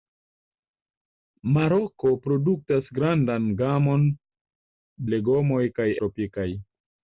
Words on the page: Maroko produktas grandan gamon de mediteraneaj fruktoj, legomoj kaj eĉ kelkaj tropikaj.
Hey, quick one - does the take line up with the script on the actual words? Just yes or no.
no